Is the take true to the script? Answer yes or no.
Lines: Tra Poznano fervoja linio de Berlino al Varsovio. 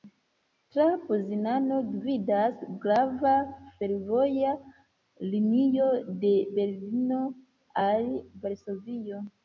no